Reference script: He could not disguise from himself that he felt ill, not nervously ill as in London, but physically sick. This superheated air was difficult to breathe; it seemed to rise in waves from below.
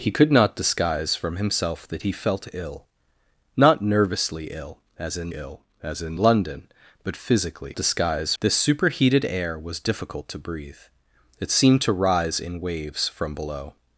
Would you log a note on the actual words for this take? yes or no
yes